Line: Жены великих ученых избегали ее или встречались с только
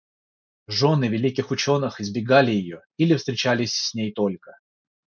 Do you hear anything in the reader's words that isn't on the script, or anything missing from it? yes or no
yes